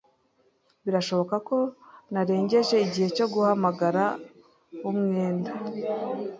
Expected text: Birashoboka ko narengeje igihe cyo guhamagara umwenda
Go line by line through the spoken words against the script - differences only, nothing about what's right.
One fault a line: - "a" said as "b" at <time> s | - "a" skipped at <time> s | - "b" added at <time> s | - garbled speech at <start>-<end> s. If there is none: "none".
none